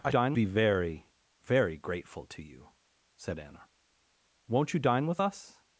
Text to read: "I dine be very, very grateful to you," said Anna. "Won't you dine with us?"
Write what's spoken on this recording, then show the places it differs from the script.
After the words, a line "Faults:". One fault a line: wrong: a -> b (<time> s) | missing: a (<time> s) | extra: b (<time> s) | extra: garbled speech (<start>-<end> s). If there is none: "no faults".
"I dine be very, very grateful to you," said Anna. "Won't you dine with us?"
Faults:
no faults